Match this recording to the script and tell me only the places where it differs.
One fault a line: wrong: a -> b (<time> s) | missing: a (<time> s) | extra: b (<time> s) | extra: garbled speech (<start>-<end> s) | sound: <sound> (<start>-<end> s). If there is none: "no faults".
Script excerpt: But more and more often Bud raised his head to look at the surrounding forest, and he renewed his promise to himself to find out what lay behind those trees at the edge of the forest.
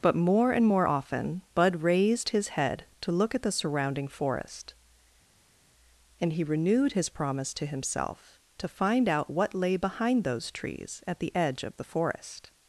no faults